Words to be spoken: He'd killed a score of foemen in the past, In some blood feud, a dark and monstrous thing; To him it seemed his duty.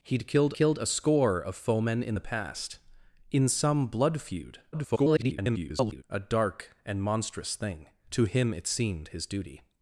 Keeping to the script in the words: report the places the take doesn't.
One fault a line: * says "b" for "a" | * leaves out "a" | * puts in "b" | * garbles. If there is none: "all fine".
* puts in "killed"
* garbles